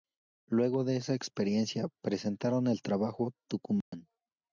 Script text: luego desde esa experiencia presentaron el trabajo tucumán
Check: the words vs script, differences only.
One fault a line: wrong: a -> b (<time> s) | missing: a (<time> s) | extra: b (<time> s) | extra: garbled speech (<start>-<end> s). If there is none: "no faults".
wrong: desde -> de (0.8 s)